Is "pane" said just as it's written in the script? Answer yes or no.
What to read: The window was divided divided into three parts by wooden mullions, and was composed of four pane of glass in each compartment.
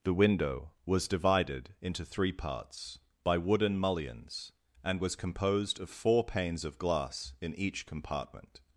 no